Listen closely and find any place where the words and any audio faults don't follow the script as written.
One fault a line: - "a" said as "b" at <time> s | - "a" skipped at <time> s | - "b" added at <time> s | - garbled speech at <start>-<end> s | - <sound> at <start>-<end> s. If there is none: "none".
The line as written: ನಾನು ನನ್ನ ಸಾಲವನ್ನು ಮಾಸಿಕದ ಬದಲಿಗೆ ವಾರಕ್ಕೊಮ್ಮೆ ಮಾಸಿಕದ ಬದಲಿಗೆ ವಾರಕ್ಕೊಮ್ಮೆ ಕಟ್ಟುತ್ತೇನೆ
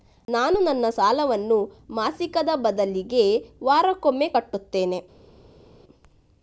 - "ಮಾಸಿಕದ ಬದಲಿಗೆ ವಾರಕ್ಕೊಮ್ಮೆ" skipped at 4.3 s